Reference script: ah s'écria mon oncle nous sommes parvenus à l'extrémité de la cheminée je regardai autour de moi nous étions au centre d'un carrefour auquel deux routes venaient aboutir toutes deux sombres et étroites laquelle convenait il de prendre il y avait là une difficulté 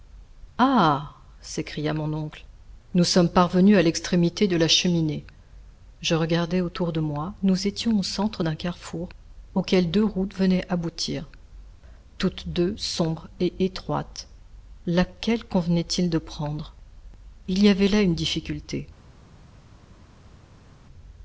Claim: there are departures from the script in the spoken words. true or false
false